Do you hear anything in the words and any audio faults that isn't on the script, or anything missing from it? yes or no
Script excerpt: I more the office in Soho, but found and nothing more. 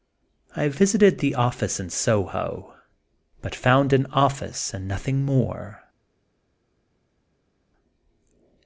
yes